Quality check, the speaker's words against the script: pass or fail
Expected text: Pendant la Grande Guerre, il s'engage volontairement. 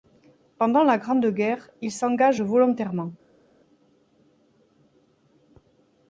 pass